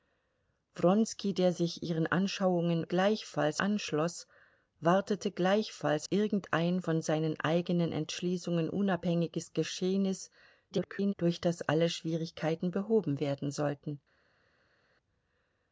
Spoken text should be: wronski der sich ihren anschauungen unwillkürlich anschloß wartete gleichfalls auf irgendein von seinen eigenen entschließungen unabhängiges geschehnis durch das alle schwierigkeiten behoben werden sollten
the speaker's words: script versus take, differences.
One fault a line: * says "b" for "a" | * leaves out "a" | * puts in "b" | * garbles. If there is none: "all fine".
* says "gleichfalls" for "unwillkürlich"
* leaves out "auf"
* garbles